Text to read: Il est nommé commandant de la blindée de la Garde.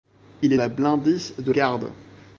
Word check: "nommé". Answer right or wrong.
wrong